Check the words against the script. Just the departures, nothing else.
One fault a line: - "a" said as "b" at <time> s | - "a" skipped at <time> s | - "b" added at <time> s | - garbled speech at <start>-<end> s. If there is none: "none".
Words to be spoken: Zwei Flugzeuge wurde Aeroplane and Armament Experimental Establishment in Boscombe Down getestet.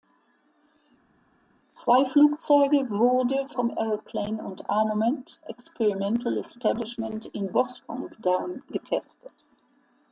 - "vom" added at 3.5 s